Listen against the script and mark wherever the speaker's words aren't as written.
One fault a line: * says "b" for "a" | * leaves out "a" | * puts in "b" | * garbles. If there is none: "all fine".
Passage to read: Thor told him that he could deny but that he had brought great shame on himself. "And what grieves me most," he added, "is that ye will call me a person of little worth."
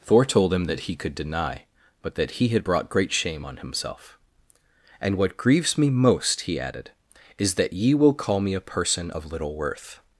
all fine